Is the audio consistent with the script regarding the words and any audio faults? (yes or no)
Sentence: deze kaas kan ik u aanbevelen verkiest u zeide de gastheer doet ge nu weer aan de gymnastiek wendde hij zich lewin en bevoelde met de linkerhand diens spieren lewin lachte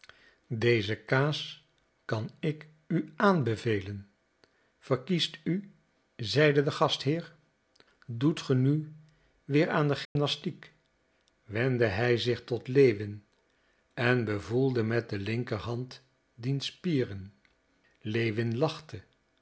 no